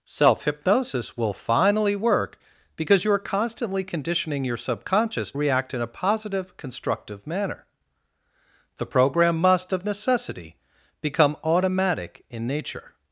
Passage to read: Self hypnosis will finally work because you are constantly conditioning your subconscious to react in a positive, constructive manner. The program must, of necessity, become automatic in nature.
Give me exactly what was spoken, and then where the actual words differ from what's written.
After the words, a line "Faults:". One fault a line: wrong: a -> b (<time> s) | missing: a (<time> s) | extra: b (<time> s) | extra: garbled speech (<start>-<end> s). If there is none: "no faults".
Self hypnosis will finally work because you are constantly conditioning your subconscious react in a positive, constructive manner. The program must, of necessity, become automatic in nature.
Faults:
missing: to (5.3 s)